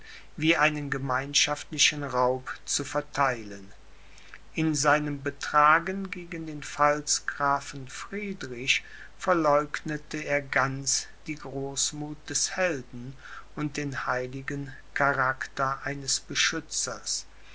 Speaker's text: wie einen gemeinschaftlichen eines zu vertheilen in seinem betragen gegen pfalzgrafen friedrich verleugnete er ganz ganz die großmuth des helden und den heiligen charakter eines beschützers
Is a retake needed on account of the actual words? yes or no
yes